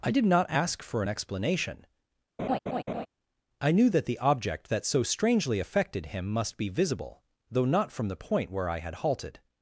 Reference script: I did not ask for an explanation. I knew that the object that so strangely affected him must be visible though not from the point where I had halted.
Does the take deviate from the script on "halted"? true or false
false